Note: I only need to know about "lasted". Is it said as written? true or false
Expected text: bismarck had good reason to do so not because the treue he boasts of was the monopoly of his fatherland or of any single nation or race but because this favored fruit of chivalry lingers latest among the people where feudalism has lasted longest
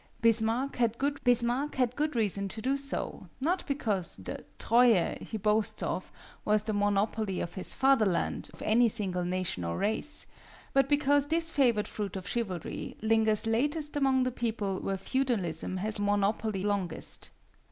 false